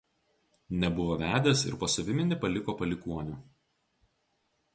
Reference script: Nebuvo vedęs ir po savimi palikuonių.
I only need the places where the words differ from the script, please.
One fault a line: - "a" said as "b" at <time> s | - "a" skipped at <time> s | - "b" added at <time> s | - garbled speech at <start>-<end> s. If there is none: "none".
- "nepaliko" added at 2.3 s